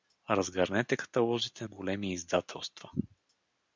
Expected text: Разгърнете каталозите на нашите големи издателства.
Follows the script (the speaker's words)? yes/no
no